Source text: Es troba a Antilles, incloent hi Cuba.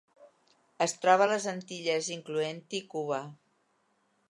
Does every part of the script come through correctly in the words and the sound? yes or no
no